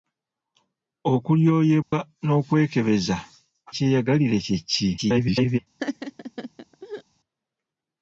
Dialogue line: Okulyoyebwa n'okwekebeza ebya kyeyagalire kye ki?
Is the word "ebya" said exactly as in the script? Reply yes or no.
no